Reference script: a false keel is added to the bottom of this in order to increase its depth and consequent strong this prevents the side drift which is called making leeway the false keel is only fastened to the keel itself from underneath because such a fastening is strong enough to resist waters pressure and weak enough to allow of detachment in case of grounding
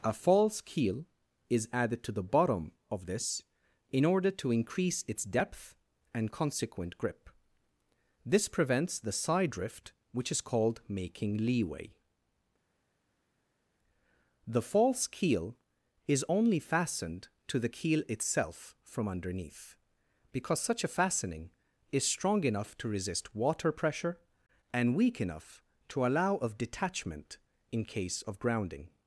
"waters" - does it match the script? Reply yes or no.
no